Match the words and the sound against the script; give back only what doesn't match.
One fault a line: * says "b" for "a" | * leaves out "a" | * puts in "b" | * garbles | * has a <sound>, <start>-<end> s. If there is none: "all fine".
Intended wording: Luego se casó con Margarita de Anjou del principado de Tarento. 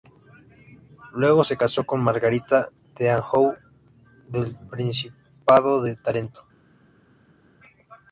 all fine